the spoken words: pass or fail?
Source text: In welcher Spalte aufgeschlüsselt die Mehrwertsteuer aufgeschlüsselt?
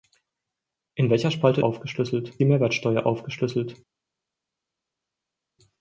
pass